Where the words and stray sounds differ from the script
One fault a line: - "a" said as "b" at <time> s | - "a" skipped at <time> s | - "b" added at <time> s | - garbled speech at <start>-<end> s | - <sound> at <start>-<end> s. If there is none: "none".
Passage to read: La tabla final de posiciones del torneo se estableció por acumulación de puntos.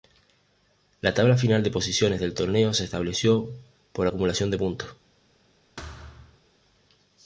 - thud at 5.8-6.4 s